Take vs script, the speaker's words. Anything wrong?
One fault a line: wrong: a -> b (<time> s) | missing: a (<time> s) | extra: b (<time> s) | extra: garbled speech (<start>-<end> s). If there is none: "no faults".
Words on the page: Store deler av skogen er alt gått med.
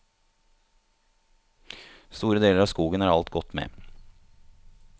no faults